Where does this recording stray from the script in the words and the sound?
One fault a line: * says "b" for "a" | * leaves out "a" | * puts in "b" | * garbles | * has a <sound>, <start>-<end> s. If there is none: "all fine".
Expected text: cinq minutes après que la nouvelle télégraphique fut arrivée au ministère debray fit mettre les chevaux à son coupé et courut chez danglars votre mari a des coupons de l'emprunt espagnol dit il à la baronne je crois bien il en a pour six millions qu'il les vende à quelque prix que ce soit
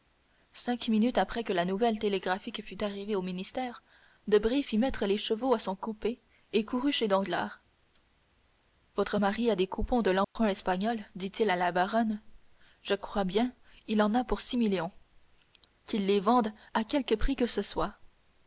* has a dropout, 10.2-10.4 s